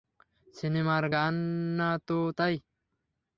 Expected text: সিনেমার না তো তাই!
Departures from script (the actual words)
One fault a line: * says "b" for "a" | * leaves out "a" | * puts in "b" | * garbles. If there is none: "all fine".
* puts in "গান"